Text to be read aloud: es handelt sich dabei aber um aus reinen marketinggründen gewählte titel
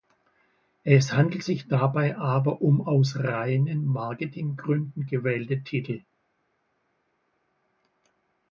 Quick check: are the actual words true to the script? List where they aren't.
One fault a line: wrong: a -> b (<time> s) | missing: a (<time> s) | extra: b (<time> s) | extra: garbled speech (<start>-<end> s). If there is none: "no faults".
no faults